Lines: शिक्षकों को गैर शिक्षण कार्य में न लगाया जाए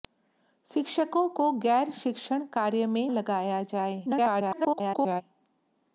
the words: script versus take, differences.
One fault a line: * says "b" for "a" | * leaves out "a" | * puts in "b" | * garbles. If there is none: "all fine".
* leaves out "न"
* garbles